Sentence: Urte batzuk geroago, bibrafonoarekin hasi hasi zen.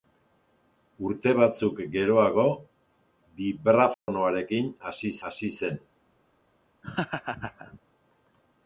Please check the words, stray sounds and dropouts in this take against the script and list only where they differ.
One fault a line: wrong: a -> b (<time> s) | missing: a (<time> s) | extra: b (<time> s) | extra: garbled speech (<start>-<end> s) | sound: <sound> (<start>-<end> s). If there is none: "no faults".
sound: dropout (3.9-4.1 s)
sound: laugh (6.8-7.8 s)